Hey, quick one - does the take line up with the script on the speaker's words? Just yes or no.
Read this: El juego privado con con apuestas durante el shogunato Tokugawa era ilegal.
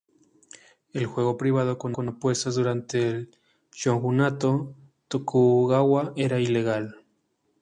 yes